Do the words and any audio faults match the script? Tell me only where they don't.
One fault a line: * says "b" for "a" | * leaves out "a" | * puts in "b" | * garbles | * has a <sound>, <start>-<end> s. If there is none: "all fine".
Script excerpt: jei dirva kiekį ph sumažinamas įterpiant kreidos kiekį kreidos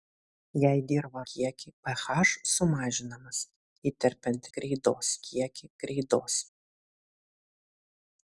all fine